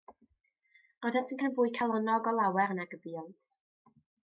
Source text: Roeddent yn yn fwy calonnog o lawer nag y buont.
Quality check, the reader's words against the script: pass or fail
pass